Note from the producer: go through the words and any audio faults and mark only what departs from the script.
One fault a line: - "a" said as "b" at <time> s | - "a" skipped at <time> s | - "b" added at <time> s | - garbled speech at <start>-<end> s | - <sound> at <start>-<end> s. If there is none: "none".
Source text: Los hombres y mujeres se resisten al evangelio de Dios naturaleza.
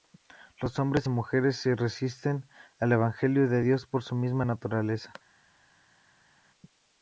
- "por su misma" added at 3.9 s